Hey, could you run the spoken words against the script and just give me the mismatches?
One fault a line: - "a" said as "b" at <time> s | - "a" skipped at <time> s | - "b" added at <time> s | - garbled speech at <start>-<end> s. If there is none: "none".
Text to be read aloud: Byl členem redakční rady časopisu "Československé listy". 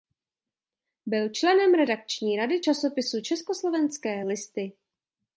none